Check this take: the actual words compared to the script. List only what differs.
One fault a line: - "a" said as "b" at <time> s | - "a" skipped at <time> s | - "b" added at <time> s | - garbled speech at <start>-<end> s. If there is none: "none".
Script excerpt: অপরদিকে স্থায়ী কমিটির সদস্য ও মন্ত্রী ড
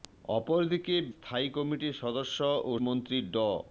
none